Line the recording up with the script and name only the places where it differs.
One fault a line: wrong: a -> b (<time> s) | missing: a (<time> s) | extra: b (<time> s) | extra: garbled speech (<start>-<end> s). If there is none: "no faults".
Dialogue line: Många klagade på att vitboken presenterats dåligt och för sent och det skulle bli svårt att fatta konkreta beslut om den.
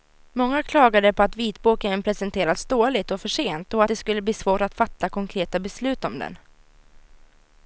no faults